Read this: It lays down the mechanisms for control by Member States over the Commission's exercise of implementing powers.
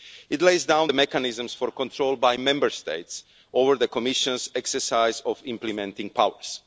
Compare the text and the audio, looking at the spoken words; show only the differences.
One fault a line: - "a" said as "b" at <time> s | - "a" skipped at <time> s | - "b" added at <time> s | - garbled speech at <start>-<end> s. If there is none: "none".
none